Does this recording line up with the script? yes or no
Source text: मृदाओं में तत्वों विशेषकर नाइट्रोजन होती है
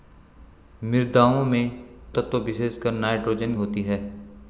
yes